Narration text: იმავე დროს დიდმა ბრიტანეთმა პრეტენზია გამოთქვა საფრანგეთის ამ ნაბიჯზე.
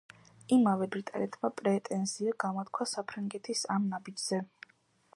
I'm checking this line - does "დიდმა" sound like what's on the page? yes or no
no